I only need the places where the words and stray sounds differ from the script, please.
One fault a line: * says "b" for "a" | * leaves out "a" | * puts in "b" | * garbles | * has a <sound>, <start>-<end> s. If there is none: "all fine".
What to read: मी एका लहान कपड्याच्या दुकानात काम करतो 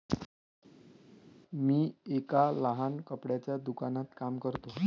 all fine